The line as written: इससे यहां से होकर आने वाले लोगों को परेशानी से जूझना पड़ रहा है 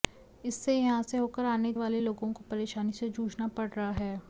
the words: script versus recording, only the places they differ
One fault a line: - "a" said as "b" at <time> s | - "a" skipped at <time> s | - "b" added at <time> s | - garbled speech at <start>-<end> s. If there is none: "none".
none